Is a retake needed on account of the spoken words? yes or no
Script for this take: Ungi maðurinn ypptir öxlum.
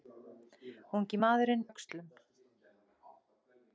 yes